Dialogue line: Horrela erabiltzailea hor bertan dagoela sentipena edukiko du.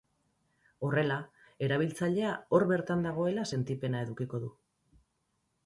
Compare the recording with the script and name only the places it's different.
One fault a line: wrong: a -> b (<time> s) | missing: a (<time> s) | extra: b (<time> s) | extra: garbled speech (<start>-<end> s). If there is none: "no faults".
no faults